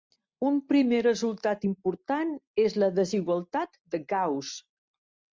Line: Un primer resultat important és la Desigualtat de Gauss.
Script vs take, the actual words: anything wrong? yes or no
no